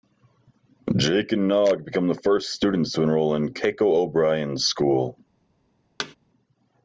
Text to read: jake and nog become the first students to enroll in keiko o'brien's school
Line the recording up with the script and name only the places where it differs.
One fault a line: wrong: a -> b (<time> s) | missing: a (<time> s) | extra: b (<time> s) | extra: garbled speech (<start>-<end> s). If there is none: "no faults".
no faults